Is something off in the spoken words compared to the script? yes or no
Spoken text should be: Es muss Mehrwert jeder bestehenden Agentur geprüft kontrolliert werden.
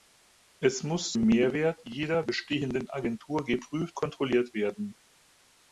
no